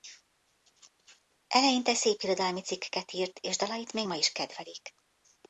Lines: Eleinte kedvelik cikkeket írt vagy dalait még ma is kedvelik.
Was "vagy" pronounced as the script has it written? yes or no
no